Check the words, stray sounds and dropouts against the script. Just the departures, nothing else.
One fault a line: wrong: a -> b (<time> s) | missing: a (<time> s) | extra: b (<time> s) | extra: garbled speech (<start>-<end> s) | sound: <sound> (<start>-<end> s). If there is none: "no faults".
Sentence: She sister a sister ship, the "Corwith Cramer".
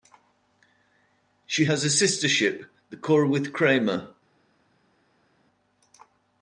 wrong: sister -> has (1.6 s)